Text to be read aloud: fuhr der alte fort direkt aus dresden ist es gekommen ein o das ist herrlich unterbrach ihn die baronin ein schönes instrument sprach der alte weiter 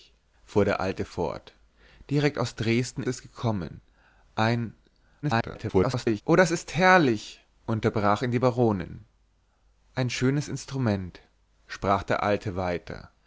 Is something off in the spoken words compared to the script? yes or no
yes